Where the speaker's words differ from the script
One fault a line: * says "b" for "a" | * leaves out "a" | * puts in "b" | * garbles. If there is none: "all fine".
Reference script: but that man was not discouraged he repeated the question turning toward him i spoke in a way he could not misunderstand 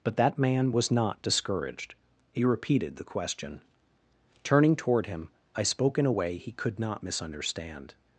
all fine